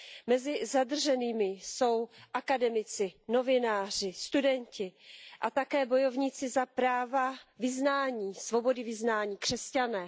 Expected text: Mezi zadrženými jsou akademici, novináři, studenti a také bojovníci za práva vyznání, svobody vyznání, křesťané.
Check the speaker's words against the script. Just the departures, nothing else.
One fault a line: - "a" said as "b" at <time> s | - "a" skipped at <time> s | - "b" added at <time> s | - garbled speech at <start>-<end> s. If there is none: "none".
none